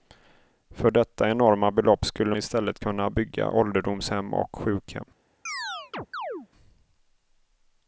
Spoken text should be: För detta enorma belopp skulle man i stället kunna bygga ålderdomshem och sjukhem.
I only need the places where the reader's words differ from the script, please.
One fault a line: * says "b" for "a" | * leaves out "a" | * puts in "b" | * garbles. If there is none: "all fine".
* leaves out "man"